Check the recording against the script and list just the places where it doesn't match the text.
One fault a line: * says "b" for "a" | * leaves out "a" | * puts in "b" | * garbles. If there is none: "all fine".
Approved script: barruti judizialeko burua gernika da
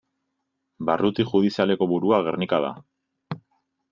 all fine